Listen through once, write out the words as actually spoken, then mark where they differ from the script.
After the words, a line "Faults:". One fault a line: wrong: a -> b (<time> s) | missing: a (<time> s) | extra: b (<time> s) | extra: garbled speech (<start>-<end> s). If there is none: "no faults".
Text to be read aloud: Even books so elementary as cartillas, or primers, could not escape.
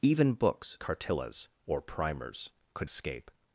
Even books cartillas, or primers, could escape.
Faults:
missing: so elementary as (0.8 s)
missing: not (2.9 s)